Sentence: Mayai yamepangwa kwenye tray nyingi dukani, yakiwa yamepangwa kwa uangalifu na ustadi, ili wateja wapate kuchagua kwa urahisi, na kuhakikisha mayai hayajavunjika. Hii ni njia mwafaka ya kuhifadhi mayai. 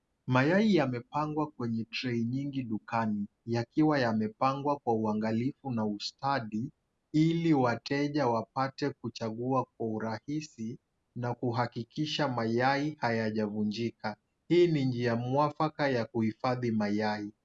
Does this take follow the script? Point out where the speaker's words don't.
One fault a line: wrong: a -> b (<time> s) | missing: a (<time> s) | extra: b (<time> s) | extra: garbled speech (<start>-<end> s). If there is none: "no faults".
no faults